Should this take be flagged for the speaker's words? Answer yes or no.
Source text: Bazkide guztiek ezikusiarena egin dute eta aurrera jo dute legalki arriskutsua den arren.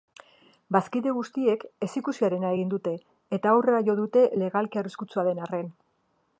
no